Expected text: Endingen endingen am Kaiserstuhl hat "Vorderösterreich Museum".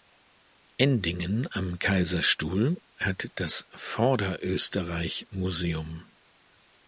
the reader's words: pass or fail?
fail